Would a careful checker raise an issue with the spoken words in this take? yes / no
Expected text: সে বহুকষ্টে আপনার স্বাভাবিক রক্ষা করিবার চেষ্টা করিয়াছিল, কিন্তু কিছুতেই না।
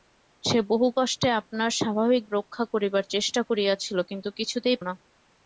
no